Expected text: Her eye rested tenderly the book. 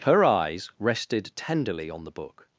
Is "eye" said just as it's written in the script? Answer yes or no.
no